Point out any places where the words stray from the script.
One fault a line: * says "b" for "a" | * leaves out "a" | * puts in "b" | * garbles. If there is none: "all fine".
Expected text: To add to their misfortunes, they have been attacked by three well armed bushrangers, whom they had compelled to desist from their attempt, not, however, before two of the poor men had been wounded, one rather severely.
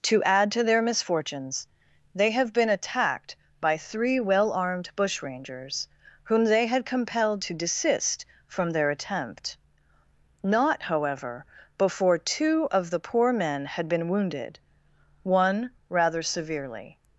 all fine